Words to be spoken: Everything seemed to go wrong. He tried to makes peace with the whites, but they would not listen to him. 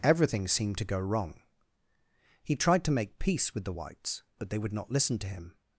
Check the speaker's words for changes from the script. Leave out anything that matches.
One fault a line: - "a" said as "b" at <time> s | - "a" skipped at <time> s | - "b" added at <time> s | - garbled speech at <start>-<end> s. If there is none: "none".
- "makes" said as "make" at 2.9 s